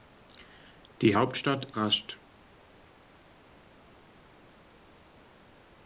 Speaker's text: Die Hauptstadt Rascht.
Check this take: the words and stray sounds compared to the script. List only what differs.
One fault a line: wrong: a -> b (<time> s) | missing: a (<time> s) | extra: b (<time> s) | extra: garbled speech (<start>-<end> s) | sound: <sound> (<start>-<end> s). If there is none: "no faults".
no faults